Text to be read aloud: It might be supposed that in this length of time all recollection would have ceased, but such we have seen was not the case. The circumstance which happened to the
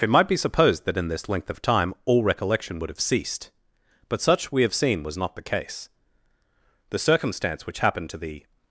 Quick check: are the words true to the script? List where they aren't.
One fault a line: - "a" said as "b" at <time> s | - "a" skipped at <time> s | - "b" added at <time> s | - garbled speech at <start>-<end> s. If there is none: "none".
none